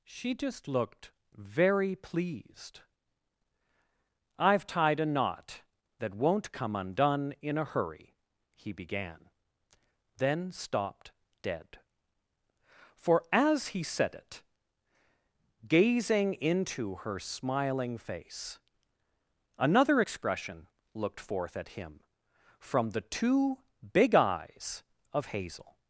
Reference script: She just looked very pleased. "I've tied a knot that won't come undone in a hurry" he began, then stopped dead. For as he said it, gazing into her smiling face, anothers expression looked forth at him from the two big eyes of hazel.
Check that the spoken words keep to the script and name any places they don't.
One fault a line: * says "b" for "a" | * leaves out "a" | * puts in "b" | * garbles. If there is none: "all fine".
* says "another" for "anothers"